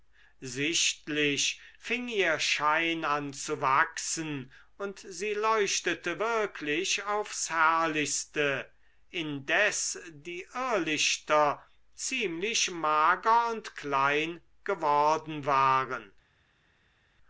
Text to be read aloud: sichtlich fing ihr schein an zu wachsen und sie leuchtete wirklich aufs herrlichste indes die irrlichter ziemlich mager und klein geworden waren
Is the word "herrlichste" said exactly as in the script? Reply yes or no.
yes